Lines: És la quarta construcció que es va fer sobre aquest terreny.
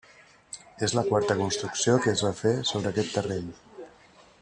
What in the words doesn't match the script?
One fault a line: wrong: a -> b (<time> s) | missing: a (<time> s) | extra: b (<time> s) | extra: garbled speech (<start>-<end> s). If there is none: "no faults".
no faults